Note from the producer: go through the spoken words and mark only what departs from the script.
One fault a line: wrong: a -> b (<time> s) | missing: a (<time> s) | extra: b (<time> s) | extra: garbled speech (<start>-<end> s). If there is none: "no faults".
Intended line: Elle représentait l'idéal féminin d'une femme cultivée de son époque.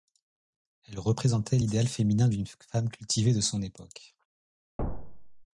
no faults